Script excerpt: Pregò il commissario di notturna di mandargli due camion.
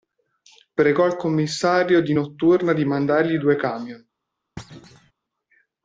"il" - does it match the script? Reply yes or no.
yes